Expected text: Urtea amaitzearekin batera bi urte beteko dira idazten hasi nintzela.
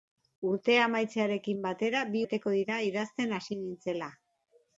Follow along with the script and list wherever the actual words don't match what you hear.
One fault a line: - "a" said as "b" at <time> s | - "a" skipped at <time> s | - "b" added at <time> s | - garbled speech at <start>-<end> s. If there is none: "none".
- "urte" skipped at 2.2 s